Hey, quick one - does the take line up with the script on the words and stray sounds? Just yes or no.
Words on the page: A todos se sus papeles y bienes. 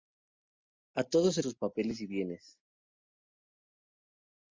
yes